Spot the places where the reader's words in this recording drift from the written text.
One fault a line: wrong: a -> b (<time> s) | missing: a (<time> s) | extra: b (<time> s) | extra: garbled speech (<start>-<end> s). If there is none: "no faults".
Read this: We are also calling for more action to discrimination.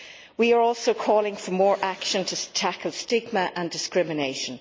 extra: tackle stigma and (2.5 s)